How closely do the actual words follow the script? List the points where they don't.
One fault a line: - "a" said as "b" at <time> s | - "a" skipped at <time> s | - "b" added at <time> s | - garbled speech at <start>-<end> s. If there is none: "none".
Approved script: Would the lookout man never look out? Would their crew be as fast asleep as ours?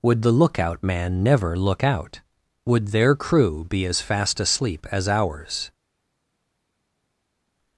none